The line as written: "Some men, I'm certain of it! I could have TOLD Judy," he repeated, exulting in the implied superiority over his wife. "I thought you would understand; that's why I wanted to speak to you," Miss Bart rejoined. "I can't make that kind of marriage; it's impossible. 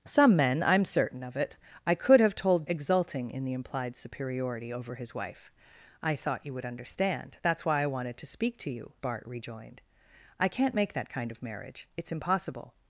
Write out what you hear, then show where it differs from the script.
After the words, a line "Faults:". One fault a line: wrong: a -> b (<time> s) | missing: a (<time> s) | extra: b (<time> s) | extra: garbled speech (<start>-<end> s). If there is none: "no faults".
"Some men, I'm certain of it! I could have TOLD Exulting in the implied superiority over his wife. "I thought you would understand; that's why I wanted to speak to you," Bart rejoined. "I can't make that kind of marriage; it's impossible.
Faults:
missing: Judy he repeated (2.7 s)
missing: Miss (8.9 s)